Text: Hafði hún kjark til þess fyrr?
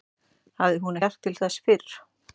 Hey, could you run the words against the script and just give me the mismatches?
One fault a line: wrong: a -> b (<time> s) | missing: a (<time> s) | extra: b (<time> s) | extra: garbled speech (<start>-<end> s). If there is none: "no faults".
no faults